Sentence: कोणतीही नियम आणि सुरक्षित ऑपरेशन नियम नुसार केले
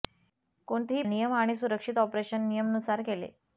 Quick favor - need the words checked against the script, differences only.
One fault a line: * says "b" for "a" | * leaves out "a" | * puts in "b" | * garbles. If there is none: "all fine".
all fine